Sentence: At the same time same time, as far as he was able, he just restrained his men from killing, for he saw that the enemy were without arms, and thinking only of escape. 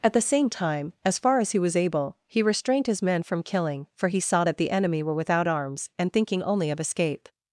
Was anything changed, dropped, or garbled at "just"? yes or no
yes